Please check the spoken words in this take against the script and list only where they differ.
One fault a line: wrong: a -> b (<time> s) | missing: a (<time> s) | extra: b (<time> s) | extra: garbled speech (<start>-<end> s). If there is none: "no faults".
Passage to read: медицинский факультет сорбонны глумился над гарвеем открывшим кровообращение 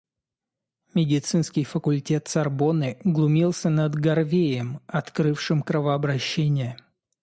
no faults